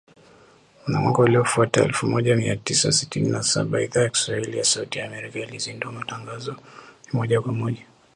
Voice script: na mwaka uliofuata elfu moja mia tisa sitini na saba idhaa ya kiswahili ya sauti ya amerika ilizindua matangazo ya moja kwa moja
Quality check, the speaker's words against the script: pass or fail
pass